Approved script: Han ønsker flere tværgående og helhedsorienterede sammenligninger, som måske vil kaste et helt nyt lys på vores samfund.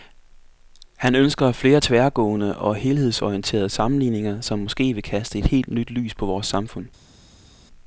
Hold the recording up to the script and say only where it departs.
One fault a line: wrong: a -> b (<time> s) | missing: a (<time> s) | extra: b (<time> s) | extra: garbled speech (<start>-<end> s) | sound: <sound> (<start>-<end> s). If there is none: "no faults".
no faults